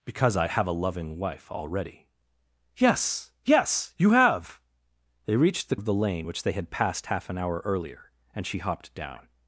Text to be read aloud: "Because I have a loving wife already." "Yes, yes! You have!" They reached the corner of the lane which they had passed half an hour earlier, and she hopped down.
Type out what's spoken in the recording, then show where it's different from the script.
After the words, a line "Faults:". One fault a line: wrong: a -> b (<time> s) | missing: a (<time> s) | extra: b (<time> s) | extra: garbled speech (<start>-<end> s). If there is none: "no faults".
"Because I have a loving wife already." "Yes, yes! You have!" They reached the of the lane which they had passed half an hour earlier, and she hopped down.
Faults:
missing: corner (5.8 s)